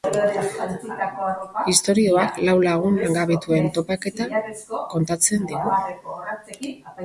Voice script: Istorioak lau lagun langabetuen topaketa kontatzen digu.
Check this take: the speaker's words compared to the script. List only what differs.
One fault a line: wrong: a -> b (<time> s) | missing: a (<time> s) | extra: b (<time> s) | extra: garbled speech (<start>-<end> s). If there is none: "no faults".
no faults